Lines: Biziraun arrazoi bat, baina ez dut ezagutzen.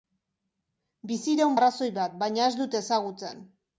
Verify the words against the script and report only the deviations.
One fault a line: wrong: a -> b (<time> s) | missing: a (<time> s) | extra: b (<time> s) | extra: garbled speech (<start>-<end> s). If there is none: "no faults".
no faults